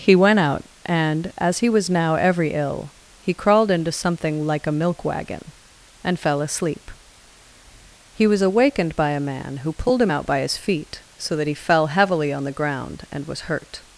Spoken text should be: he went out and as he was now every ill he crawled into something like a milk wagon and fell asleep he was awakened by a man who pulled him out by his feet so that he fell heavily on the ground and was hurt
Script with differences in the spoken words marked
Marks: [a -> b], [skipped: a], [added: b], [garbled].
he went out and as he was now every ill he crawled into something like a milk wagon and fell asleep he was awakened by a man who pulled him out by his feet so that he fell heavily on the ground and was hurt